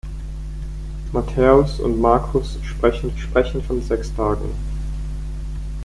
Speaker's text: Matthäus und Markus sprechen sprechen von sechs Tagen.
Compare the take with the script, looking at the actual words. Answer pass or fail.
pass